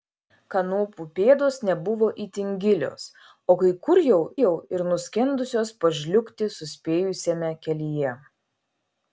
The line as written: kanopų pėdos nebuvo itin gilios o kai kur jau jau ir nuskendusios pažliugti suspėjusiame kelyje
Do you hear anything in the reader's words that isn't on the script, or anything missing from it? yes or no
no